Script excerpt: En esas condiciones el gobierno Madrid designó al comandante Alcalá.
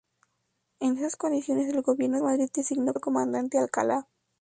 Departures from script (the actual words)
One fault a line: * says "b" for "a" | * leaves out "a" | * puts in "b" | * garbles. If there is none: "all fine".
all fine